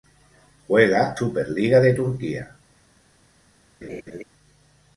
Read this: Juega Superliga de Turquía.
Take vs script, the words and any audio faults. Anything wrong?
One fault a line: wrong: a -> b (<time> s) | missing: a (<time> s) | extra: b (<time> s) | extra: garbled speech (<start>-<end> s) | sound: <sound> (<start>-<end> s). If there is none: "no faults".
sound: laugh (3.8-4.2 s)